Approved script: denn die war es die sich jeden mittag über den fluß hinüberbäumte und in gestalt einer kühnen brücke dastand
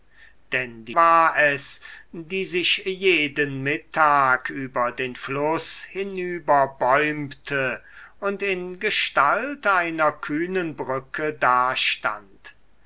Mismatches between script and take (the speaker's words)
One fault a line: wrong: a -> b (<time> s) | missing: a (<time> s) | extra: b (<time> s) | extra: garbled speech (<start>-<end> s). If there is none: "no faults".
no faults